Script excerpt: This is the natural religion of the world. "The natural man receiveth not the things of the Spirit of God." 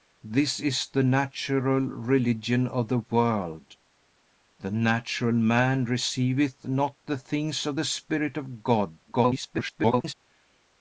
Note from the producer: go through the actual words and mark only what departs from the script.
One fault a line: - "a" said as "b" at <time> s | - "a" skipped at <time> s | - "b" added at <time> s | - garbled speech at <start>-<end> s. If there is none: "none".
- garbled speech at 9.0-10.1 s